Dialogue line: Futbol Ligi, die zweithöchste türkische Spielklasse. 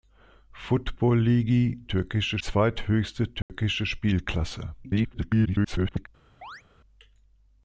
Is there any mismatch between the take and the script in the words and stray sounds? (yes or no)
yes